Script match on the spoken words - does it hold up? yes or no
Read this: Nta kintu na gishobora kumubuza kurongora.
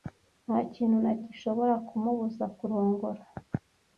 yes